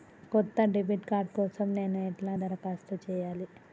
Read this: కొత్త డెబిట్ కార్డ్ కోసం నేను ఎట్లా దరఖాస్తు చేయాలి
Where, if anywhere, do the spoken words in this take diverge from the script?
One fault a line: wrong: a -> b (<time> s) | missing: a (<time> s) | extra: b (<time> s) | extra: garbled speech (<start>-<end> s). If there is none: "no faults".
no faults